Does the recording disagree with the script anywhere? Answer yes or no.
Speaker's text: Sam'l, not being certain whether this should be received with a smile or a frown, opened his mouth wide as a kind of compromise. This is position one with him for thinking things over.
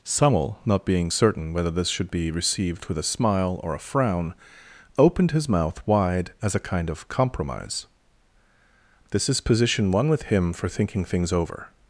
no